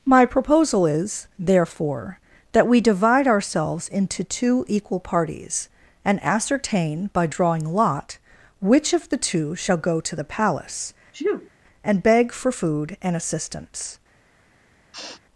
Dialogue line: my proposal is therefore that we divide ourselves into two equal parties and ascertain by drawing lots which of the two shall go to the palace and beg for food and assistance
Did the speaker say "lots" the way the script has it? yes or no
no